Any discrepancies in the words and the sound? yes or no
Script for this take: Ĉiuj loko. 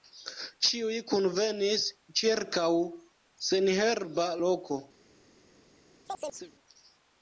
yes